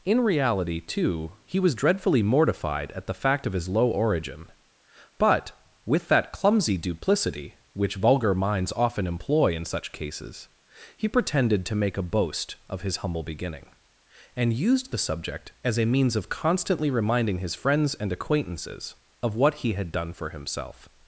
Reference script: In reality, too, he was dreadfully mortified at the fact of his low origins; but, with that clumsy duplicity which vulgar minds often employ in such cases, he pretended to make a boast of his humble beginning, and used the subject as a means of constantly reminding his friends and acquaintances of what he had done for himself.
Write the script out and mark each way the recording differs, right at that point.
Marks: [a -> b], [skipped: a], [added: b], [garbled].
In reality, too, he was dreadfully mortified at the fact of his low [origins; -> origin] but, with that clumsy duplicity which vulgar minds often employ in such cases, he pretended to make a boast of his humble beginning, and used the subject as a means of constantly reminding his friends and acquaintances of what he had done for himself.